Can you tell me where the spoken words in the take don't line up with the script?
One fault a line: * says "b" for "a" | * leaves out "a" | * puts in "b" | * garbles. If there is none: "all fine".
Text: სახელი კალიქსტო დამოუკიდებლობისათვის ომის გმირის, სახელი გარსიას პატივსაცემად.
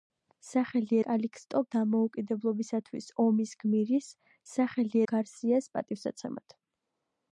all fine